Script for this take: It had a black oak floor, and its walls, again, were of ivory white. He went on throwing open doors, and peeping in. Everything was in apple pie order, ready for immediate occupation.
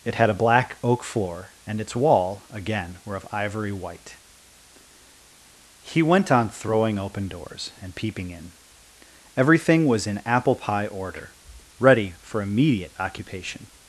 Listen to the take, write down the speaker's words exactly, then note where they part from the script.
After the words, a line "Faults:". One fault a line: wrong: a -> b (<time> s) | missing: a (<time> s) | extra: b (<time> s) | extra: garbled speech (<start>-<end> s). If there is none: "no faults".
It had a black oak floor, and its wall, again, were of ivory white. He went on throwing open doors, and peeping in. Everything was in apple pie order, ready for immediate occupation.
Faults:
wrong: walls -> wall (1.9 s)